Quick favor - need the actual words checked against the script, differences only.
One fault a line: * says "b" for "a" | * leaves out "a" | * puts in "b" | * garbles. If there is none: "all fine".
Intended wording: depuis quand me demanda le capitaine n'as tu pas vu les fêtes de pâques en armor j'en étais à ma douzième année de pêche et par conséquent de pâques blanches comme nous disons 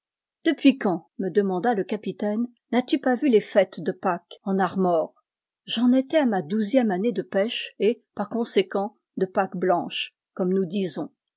all fine